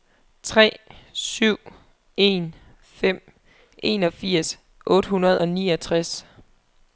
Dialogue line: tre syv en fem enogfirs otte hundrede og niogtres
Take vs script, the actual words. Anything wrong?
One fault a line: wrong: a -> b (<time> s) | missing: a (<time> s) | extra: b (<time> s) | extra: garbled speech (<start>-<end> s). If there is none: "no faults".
no faults